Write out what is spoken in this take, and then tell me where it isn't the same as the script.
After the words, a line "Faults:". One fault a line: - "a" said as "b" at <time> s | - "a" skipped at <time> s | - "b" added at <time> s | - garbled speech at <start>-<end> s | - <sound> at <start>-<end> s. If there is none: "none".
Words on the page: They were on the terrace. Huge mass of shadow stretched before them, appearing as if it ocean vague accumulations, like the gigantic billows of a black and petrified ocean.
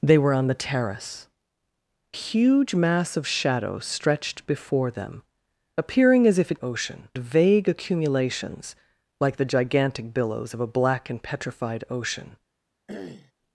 They were on the terrace. Huge mass of shadow stretched before them, appearing as if it ocean vague accumulations, like the gigantic billows of a black and petrified ocean.
Faults:
- throat clearing at 12.9-13.3 s